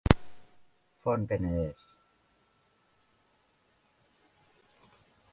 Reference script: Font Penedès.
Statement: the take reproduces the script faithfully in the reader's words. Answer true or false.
true